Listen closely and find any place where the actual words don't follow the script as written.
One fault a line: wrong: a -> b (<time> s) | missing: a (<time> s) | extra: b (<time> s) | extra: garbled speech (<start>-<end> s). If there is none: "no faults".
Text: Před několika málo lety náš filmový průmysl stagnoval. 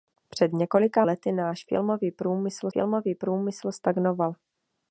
missing: málo (1.1 s)
extra: filmový průmysl (2.7 s)